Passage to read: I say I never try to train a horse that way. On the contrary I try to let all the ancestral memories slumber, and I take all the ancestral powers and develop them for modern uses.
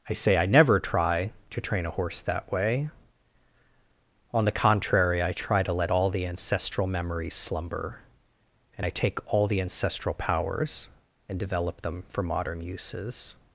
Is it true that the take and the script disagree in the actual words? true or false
false